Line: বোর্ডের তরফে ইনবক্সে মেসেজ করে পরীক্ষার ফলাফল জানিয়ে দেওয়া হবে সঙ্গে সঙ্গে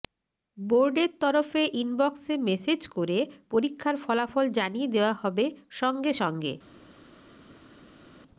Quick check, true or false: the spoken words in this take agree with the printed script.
true